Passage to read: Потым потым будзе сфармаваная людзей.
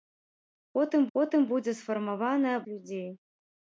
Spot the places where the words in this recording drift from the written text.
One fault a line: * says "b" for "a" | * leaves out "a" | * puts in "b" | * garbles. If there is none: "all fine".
all fine